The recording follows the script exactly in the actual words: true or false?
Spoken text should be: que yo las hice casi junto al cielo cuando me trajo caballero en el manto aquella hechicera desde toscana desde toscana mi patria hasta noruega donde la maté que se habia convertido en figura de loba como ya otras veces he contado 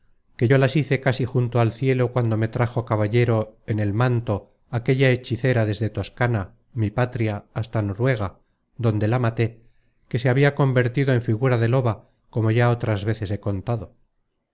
false